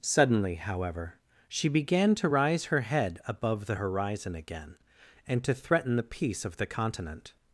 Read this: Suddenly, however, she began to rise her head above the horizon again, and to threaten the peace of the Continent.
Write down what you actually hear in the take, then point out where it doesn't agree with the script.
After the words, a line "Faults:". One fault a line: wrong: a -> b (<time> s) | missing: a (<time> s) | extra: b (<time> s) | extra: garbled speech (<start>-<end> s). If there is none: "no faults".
Suddenly, however, she began to rise her head above the horizon again, and to threaten the peace of the Continent.
Faults:
no faults